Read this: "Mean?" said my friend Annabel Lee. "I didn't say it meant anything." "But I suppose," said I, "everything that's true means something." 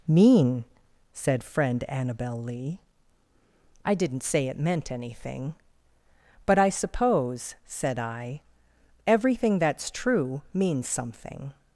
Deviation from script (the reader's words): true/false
true